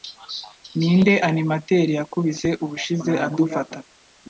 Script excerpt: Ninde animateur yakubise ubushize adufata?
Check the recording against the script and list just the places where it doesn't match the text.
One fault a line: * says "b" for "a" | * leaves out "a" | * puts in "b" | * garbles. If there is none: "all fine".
all fine